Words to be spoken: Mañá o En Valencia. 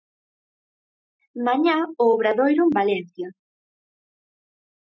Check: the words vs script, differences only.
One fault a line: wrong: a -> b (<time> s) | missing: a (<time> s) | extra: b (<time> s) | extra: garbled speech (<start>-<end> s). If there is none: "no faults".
extra: Obradoiro (2.1 s)